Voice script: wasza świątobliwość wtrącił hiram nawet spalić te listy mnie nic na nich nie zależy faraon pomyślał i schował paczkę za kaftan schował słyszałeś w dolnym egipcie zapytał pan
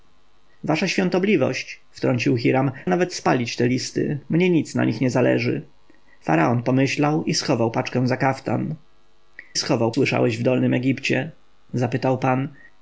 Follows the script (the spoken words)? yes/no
yes